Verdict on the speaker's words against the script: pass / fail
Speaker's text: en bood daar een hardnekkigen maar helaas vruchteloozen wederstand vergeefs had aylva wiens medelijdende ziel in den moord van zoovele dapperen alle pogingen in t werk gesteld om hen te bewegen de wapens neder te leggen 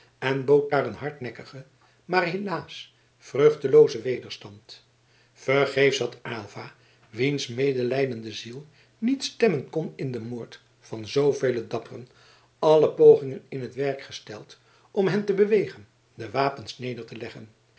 fail